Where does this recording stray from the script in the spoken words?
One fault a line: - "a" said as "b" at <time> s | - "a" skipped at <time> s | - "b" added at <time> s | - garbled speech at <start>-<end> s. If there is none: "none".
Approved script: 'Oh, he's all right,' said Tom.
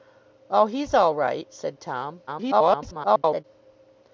- garbled speech at 2.3-3.4 s